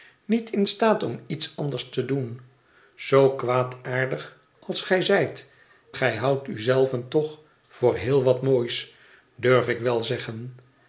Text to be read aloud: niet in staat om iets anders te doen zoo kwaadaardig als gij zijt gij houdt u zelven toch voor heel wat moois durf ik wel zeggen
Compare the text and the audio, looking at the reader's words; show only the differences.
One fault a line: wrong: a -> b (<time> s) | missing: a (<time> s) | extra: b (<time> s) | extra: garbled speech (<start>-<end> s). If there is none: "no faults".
no faults